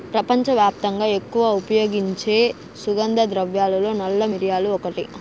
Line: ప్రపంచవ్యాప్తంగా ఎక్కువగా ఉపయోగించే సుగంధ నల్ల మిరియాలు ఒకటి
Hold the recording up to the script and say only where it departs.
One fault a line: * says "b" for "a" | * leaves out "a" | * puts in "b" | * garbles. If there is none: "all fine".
* puts in "ద్రవ్యాలలో"